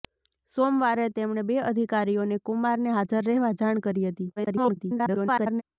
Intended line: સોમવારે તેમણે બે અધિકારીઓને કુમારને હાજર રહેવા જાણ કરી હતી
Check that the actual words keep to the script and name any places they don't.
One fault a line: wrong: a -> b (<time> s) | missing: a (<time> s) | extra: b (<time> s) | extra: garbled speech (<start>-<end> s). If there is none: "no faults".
extra: garbled speech (4.4-5.6 s)